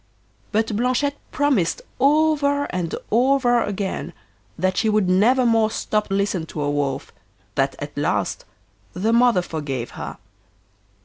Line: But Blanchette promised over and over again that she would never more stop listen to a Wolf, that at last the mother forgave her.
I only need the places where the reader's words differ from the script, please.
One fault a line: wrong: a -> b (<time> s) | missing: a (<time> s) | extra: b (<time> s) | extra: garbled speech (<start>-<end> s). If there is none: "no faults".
no faults